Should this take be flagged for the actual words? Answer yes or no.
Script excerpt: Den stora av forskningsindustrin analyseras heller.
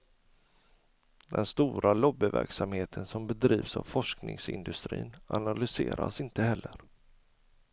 yes